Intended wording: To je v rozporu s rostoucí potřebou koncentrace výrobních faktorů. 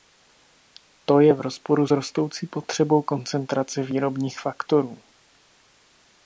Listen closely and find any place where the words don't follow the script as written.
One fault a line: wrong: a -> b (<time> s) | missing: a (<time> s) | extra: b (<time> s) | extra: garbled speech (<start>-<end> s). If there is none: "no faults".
no faults